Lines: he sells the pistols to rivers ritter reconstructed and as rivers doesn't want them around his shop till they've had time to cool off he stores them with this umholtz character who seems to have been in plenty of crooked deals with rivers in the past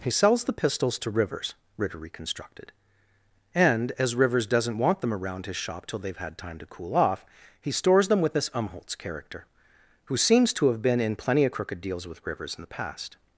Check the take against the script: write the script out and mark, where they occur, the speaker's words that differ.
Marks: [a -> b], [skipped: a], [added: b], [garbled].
he sells the pistols to rivers ritter reconstructed and as rivers doesn't want them around his shop till they've had time to cool off he stores them with this umholtz character who seems to have been in plenty of crooked deals with rivers in the past